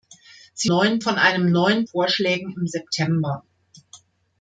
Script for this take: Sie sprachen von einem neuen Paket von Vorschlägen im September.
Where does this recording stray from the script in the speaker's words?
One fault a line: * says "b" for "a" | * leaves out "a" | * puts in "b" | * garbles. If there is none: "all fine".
* says "neuen" for "sprachen"
* leaves out "Paket von"